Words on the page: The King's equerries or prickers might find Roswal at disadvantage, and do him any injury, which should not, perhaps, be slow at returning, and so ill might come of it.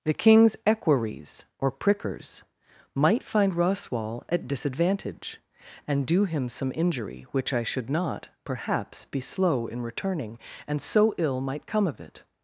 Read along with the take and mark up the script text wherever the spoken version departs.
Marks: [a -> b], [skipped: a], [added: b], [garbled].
The King's equerries or prickers might find Roswal at disadvantage, and do him [any -> some] injury, which [added: I] should not, perhaps, be slow [at -> in] returning, and so ill might come of it.